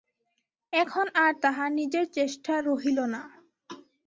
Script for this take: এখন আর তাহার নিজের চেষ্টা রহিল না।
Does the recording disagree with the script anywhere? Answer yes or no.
no